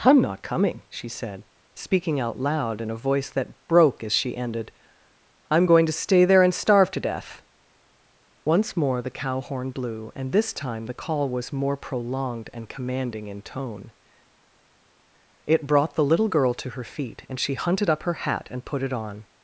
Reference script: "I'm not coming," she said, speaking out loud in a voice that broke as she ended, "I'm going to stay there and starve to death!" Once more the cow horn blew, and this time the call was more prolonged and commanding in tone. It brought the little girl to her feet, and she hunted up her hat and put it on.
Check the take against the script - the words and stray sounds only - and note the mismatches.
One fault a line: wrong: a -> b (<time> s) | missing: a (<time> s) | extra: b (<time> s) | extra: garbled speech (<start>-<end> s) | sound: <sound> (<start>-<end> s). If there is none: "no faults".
no faults